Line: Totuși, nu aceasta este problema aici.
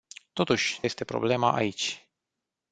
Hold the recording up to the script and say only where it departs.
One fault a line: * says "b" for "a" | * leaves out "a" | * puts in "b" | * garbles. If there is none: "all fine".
* leaves out "nu aceasta"